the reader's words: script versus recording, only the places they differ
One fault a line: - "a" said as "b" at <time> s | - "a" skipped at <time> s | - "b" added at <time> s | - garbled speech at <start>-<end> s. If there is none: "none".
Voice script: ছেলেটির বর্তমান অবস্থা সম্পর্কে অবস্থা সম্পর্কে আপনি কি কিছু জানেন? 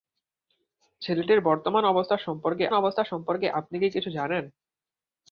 none